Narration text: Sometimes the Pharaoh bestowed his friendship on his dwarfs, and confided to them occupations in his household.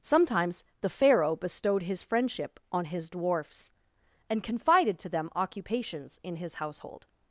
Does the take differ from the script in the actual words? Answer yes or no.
no